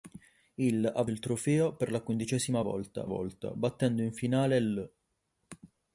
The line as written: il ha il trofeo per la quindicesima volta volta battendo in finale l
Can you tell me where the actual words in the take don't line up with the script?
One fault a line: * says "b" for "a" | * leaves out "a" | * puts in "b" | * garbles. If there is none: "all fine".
all fine